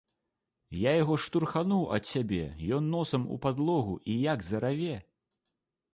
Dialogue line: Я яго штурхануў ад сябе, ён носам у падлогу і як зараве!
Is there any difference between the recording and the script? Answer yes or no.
no